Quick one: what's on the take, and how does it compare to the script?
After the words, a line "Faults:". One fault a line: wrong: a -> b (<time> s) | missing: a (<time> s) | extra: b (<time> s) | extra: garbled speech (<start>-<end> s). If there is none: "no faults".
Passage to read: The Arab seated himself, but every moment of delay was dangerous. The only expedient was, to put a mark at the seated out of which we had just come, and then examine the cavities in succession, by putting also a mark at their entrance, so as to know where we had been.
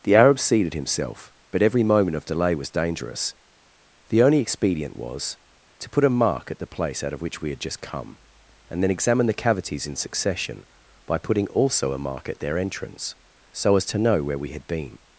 The Arab seated himself, but every moment of delay was dangerous. The only expedient was, to put a mark at the place out of which we had just come, and then examine the cavities in succession, by putting also a mark at their entrance, so as to know where we had been.
Faults:
wrong: seated -> place (6.7 s)